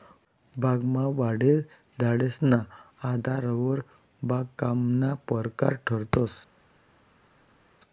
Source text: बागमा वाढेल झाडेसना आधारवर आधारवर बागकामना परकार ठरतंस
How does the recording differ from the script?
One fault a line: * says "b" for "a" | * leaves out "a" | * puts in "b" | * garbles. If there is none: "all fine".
* leaves out "आधारवर"